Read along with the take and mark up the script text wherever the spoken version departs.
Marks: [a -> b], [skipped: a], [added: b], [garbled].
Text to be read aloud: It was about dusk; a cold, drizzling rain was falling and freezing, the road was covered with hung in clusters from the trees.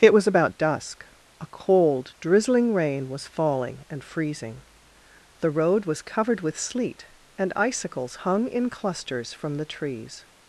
It was about dusk; a cold, drizzling rain was falling and freezing, the road was covered with [added: sleet and icicles] hung in clusters from the trees.